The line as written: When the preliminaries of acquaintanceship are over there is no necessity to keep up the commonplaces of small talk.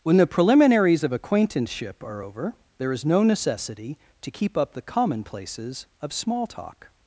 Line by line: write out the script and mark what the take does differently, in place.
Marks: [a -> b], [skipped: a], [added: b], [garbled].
When the preliminaries of acquaintanceship are over there is no necessity to keep up the commonplaces of small talk.